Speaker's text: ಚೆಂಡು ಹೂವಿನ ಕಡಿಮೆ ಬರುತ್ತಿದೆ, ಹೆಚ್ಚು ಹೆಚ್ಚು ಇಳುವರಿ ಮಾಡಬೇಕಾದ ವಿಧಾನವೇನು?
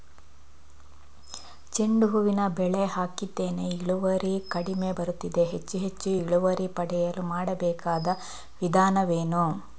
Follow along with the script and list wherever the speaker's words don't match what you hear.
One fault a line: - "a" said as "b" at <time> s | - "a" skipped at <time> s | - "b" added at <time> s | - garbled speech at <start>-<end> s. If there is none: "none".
- "ಬೆಳೆ ಹಾಕಿದ್ದೇನೆ ಇಳುವರಿ" added at 2.6 s
- "ಪಡೆಯಲು" added at 6.8 s